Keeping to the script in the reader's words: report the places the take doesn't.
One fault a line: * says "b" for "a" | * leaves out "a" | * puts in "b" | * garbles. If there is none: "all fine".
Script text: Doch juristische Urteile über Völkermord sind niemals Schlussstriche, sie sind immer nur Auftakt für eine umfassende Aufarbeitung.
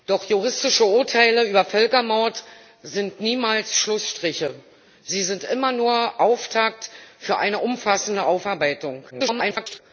* garbles